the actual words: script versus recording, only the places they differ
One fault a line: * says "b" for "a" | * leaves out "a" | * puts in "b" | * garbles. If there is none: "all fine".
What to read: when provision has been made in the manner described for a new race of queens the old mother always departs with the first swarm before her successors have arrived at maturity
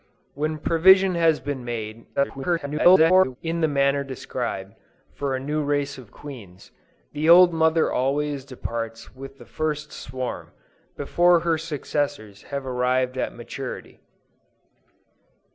* garbles